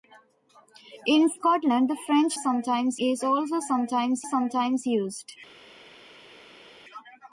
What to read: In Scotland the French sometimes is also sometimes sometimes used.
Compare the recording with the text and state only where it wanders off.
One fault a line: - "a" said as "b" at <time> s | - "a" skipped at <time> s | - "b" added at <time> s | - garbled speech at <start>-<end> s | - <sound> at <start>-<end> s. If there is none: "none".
none